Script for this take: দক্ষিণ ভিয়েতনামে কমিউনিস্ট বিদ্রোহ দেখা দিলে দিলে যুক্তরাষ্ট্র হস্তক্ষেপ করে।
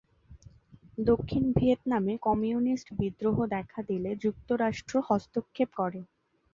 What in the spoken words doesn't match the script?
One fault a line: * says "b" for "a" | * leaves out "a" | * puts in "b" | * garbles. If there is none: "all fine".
* leaves out "দিলে"